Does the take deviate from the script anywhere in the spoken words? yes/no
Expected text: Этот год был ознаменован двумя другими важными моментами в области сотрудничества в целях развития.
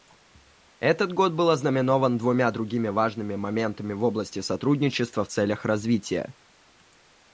no